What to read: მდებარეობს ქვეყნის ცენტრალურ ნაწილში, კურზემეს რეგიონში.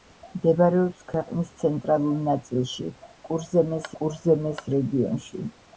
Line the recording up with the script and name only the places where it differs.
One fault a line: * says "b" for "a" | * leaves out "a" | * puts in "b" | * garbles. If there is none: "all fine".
* puts in "კურზემეს"